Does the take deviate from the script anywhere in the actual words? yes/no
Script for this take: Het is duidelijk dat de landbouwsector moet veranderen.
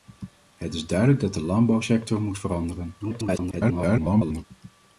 yes